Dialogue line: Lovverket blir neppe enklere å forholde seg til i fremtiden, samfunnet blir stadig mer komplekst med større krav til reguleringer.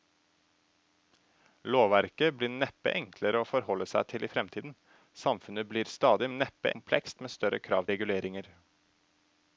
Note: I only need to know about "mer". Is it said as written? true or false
false